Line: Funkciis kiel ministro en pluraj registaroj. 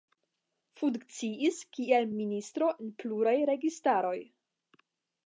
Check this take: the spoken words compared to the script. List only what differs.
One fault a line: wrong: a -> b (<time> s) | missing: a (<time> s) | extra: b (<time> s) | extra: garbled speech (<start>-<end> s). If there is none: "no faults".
no faults